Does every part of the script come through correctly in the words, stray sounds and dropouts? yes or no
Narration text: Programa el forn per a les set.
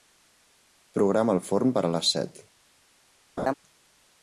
no